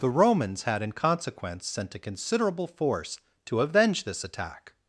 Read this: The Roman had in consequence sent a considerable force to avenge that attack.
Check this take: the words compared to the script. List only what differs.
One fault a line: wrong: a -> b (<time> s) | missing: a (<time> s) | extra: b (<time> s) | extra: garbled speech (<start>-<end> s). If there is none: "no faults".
wrong: Roman -> Romans (0.1 s)
wrong: that -> this (4.0 s)